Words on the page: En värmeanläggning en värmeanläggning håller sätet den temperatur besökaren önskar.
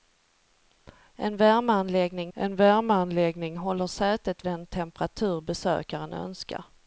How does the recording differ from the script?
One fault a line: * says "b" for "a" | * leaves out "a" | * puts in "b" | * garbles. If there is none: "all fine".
all fine